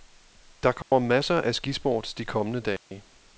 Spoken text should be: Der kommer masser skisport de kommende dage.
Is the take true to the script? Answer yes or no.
no